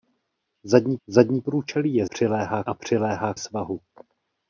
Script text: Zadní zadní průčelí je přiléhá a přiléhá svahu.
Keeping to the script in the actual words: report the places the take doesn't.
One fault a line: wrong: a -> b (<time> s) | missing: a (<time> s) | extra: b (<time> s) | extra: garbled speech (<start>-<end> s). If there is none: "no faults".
no faults